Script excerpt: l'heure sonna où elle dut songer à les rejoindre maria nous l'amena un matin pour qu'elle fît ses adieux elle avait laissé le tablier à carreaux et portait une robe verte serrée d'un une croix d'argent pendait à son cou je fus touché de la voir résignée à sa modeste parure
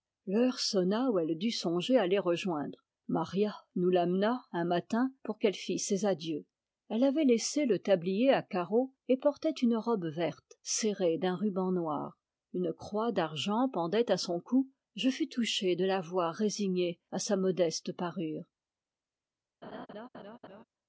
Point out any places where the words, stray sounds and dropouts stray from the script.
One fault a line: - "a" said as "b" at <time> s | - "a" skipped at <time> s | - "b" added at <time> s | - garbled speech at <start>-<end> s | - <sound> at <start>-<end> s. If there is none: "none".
- "ruban noir" added at 11.3 s
- laugh at 19.6-20.6 s